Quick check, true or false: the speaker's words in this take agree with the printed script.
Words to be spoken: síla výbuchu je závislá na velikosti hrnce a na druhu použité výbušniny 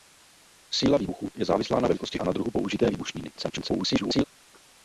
false